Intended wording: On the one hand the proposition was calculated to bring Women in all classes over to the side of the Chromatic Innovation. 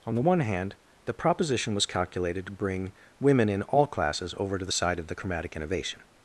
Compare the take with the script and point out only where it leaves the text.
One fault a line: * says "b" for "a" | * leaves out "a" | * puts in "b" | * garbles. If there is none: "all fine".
all fine